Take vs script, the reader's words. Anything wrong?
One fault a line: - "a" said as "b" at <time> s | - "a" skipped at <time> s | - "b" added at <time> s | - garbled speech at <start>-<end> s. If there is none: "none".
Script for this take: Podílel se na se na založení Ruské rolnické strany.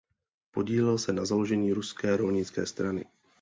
- "se na" skipped at 1.2 s